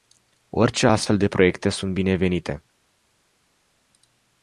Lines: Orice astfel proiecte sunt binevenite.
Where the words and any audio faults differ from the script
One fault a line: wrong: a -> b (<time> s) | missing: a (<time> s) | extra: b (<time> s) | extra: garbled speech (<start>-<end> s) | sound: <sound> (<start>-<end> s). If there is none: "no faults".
extra: de (1.2 s)